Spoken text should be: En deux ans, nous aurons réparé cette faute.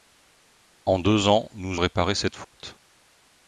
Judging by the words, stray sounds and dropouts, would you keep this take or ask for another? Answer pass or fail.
fail